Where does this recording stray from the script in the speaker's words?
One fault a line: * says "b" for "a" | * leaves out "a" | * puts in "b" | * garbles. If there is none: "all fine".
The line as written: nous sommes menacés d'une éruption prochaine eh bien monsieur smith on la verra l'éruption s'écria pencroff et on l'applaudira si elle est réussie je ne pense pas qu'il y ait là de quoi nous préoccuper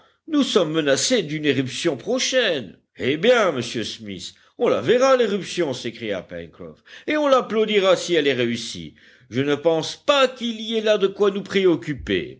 all fine